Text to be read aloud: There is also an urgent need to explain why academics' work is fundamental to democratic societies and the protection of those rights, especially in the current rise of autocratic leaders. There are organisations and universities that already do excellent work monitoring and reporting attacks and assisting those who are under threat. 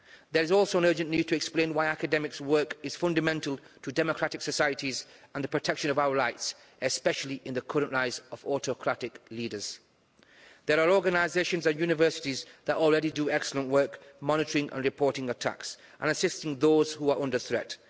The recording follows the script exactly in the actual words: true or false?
false